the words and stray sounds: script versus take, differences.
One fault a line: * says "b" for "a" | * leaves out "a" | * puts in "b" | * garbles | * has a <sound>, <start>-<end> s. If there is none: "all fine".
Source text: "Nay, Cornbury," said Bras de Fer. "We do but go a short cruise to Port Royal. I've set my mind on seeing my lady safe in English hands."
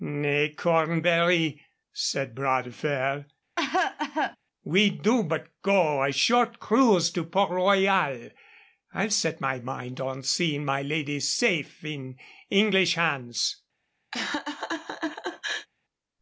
* has a cough, 3.6-4.4 s
* has a laugh, 14.1-15.7 s